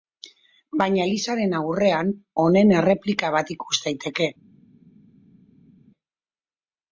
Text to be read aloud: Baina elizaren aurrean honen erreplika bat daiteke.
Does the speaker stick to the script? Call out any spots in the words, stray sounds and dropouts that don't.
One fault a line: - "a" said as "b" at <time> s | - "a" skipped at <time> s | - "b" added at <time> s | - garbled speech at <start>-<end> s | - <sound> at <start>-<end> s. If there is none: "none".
- "ikus" added at 3.6 s